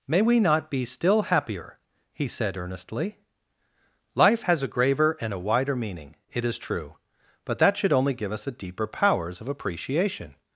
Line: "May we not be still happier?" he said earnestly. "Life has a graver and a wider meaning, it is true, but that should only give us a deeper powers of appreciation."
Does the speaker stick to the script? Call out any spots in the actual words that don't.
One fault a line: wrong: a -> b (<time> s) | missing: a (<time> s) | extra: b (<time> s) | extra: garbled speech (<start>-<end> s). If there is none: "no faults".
no faults